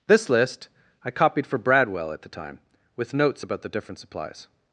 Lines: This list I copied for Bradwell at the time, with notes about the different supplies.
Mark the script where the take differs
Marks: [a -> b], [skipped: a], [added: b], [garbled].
This list I copied for Bradwell at the time, with notes about the different supplies.